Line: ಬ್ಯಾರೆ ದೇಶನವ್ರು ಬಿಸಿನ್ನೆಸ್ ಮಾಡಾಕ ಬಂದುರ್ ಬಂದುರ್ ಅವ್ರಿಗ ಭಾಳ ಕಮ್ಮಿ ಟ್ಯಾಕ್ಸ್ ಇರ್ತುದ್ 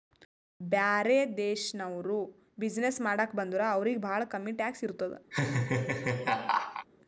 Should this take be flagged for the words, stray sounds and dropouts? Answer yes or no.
yes